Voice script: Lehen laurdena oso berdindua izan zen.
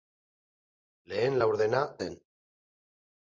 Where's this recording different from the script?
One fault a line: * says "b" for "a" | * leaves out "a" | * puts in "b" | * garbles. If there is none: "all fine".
* leaves out "oso berdindua izan"